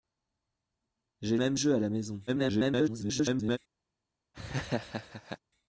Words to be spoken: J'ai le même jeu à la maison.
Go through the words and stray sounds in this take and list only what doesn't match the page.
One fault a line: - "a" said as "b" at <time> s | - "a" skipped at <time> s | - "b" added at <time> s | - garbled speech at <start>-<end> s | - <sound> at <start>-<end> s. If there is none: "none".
- "le" skipped at 1.4 s
- garbled speech at 2.3-3.6 s
- laugh at 4.3-5.4 s